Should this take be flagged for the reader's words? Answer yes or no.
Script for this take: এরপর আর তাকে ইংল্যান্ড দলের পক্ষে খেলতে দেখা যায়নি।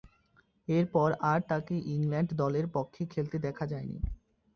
no